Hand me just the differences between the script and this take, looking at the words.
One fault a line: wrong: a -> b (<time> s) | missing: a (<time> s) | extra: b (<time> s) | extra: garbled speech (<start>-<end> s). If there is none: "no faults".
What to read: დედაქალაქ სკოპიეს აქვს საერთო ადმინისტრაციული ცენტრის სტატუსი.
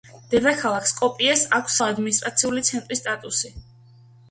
missing: საერთო (1.8 s)